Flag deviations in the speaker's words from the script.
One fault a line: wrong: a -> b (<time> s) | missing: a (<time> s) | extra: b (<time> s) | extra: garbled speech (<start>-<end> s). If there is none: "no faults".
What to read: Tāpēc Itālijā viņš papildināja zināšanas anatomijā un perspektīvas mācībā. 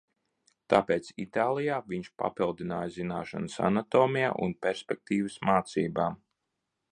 no faults